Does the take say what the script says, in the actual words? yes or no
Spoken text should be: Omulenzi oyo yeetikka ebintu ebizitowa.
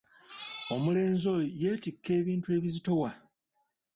yes